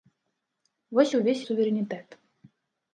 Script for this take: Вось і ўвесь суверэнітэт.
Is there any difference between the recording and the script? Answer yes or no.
no